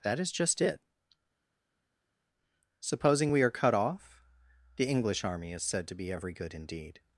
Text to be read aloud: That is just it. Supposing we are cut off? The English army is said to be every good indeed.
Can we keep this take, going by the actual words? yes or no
yes